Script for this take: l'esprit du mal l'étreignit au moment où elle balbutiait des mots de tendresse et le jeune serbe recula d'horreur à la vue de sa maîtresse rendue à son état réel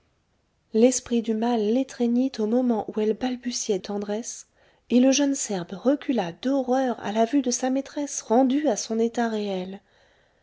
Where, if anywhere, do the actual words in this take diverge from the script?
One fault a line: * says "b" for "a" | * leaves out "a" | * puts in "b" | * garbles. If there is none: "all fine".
* leaves out "des mots de"